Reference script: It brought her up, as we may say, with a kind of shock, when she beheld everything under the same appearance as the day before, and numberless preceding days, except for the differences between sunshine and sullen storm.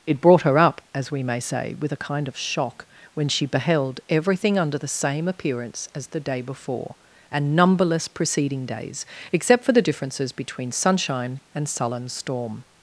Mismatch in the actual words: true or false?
false